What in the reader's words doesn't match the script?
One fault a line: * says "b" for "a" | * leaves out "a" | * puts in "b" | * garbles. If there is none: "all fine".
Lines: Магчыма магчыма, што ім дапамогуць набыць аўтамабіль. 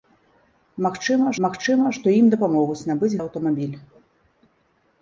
all fine